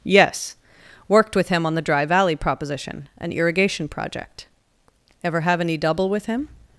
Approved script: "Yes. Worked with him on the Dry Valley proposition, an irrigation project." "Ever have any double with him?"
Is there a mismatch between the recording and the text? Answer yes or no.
no